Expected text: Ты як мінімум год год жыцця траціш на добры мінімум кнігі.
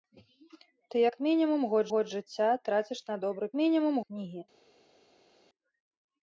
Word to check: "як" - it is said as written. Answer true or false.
true